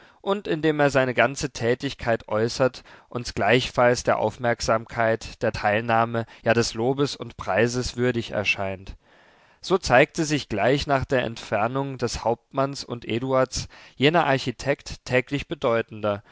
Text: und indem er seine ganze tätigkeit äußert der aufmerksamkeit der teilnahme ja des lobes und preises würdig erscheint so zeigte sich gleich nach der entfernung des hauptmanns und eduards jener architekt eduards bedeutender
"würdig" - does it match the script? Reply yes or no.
yes